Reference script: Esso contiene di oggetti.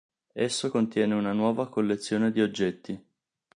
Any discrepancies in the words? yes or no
yes